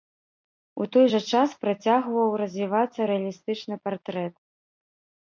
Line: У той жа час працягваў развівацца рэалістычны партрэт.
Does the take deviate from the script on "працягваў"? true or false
false